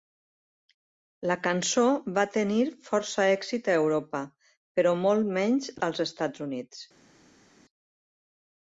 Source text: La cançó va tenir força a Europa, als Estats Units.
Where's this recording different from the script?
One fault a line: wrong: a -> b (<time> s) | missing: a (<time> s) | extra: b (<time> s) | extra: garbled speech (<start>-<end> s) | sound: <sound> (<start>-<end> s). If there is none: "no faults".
extra: èxit (3.4 s)
extra: però molt menys (4.8 s)